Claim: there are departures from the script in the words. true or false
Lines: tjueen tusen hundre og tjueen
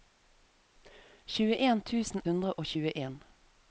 false